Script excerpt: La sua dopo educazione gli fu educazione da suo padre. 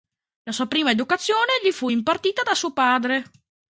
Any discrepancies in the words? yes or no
yes